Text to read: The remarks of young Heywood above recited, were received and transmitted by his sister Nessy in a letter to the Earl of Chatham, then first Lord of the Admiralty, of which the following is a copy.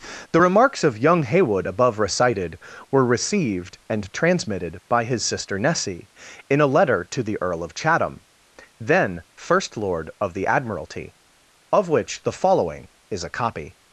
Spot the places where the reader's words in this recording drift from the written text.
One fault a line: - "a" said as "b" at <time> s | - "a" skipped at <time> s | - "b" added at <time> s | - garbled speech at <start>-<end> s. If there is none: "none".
none